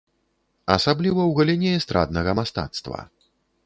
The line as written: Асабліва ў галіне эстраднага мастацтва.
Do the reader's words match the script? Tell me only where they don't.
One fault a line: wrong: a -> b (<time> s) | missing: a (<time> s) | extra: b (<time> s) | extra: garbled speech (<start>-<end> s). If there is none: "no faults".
no faults